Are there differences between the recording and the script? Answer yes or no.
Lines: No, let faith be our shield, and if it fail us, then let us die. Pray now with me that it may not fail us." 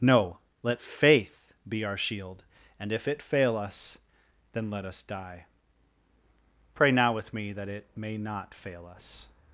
no